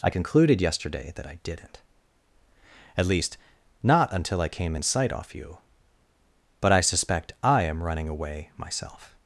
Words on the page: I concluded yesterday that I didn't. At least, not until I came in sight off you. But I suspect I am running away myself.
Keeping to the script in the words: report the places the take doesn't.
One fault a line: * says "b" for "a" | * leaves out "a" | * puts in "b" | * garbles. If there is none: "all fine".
all fine